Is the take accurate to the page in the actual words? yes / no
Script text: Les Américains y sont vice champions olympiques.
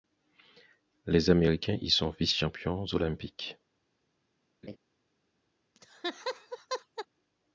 yes